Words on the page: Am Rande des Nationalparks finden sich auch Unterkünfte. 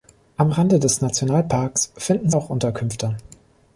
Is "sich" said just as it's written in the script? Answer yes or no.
no